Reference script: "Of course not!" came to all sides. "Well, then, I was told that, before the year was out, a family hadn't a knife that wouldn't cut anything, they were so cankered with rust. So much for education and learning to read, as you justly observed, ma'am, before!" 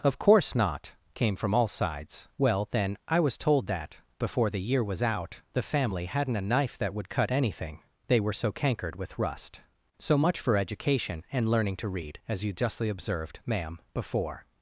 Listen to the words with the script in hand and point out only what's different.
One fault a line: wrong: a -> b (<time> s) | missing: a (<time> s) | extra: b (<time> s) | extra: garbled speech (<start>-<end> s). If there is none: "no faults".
wrong: to -> from (1.4 s)
wrong: a -> the (5.5 s)
wrong: wouldn't -> would (6.9 s)